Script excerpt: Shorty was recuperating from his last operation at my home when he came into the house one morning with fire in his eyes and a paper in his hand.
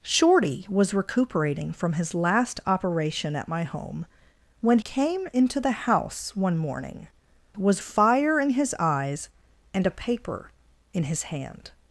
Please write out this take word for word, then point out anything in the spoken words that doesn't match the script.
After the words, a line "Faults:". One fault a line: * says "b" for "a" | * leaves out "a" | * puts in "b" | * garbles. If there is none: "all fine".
Shorty was recuperating from his last operation at my home when came into the house one morning was fire in his eyes and a paper in his hand.
Faults:
* leaves out "he"
* says "was" for "with"